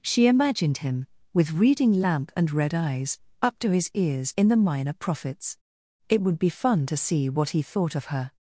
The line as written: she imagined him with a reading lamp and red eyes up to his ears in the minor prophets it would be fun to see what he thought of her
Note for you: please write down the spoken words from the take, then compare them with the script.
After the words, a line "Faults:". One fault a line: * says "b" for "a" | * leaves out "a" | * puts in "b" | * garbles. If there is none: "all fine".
she imagined him with reading lamp and red eyes up to his ears in the minor prophets it would be fun to see what he thought of her
Faults:
* leaves out "a"